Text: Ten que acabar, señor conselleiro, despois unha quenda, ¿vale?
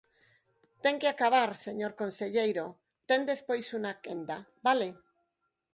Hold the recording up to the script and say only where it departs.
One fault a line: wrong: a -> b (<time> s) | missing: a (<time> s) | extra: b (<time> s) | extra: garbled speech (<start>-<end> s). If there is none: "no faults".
extra: ten (3.1 s)